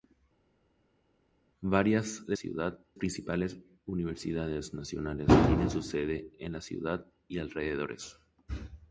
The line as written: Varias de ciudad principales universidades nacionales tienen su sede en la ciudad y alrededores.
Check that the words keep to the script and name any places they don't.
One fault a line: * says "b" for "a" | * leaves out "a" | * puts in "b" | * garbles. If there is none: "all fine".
all fine